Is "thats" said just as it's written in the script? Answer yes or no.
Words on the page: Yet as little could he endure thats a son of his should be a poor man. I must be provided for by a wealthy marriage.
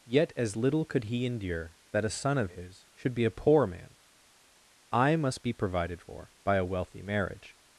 no